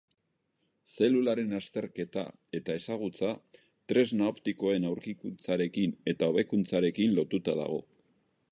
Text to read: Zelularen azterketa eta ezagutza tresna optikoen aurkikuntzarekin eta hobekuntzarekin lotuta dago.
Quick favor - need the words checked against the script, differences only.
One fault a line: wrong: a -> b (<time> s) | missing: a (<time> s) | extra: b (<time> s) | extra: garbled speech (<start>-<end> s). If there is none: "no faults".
no faults